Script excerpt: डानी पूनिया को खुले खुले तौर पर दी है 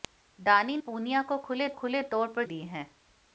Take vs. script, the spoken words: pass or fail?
pass